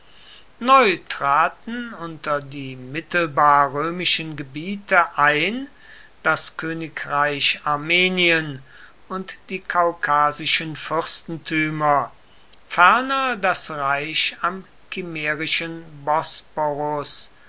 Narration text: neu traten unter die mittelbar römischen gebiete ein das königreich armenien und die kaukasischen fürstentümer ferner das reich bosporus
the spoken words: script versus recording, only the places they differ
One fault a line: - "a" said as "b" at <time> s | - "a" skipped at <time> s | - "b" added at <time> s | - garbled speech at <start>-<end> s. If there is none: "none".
- "am kimmerischen" added at 14.4 s